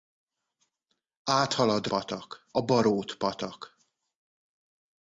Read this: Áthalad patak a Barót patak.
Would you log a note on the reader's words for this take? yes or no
no